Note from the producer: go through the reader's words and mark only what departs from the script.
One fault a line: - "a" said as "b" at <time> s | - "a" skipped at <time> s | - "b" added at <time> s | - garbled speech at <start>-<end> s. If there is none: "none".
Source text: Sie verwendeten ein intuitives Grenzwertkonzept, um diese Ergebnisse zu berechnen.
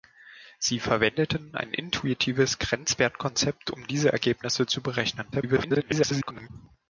- garbled speech at 5.3-6.5 s